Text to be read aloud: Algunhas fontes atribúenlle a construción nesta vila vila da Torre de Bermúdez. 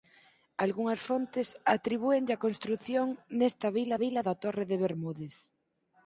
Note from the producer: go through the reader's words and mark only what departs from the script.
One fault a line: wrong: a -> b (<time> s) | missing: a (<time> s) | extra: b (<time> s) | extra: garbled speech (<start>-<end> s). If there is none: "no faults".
no faults